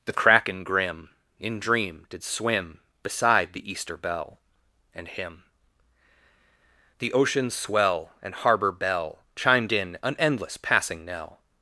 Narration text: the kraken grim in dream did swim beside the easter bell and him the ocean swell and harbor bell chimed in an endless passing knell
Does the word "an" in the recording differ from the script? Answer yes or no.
no